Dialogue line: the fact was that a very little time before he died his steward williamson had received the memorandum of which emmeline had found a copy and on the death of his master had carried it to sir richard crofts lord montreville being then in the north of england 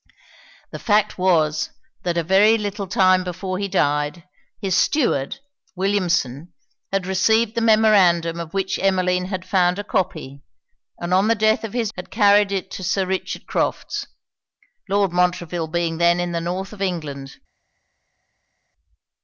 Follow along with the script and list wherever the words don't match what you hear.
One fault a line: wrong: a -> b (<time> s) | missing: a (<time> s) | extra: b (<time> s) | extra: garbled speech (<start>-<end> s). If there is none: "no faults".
missing: master (11.9 s)